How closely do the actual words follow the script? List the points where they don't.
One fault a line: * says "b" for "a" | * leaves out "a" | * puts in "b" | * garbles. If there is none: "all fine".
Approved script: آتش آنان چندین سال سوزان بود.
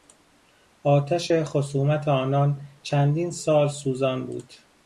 * puts in "خصومت"